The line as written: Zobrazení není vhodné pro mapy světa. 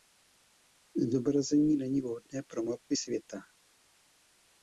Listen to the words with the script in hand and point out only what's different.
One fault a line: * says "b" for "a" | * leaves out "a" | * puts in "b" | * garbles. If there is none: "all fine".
all fine